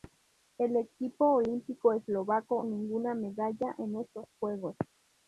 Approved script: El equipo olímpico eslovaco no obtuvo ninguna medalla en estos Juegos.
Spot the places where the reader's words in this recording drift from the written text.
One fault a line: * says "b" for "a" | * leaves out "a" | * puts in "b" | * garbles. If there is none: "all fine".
* leaves out "no obtuvo"